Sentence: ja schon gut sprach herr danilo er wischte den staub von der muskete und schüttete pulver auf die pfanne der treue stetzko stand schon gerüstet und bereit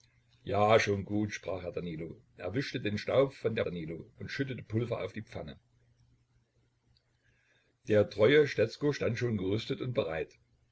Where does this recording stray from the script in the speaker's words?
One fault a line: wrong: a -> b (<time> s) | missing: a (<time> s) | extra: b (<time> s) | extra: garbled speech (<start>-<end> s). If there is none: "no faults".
wrong: muskete -> danilo (3.6 s)